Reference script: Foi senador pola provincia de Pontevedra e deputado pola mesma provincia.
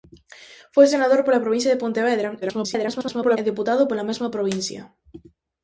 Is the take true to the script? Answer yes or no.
no